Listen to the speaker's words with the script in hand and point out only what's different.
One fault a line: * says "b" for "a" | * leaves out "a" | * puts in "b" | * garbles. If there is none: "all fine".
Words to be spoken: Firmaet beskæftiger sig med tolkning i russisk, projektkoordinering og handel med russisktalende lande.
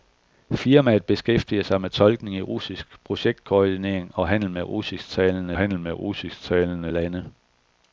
* puts in "handel med russisktalende"